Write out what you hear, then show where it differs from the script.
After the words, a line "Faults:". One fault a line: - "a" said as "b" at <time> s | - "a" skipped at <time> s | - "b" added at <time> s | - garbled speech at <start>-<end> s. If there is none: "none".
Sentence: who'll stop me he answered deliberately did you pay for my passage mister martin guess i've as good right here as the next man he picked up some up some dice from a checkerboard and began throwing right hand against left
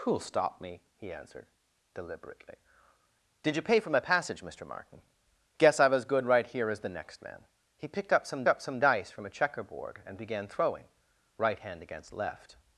who'll stop me he answered deliberately did you pay for my passage mister martin guess i've as good right here as the next man he picked up some up some dice from a checkerboard and began throwing right hand against left
Faults:
none